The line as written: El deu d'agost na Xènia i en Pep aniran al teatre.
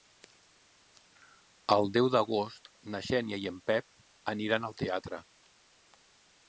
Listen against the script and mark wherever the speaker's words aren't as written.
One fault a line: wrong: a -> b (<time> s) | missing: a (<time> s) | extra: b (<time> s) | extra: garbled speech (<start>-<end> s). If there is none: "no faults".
no faults